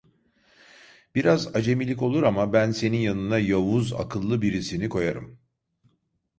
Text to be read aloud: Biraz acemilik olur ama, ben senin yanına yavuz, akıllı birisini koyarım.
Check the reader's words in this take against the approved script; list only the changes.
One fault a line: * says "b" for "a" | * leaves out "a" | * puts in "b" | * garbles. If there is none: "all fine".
all fine